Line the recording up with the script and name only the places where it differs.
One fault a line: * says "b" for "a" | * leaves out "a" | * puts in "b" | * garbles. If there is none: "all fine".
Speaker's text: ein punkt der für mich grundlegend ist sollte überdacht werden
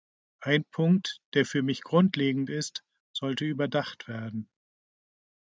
all fine